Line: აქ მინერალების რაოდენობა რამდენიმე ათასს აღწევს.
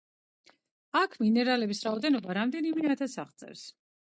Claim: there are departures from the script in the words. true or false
false